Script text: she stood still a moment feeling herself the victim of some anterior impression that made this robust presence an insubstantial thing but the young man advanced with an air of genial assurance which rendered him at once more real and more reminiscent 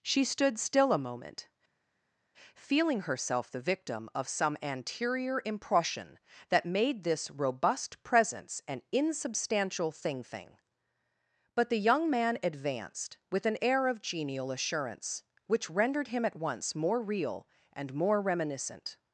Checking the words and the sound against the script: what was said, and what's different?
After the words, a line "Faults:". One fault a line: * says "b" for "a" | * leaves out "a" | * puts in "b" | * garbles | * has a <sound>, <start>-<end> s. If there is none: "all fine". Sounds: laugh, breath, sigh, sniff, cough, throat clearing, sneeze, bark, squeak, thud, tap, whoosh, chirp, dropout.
she stood still a moment feeling herself the victim of some anterior impression that made this robust presence an insubstantial thing thing but the young man advanced with an air of genial assurance which rendered him at once more real and more reminiscent
Faults:
* puts in "thing"